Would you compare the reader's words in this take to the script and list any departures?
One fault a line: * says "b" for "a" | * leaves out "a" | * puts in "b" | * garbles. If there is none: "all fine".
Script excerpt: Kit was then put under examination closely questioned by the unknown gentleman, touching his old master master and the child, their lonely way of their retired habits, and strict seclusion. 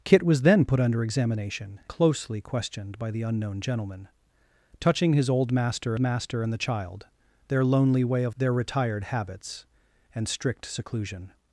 all fine